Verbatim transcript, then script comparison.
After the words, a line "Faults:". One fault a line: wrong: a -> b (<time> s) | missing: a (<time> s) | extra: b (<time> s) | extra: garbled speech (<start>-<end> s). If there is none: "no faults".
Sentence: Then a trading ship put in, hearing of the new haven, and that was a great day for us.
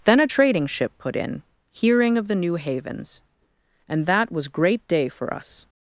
Then a trading ship put in, hearing of the new havens, and that was great day for us.
Faults:
wrong: haven -> havens (2.5 s)
missing: a (4.5 s)